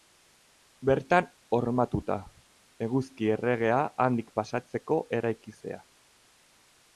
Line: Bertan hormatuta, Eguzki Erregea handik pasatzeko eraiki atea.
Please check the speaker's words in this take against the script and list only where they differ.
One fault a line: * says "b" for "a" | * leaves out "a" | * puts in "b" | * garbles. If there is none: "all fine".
all fine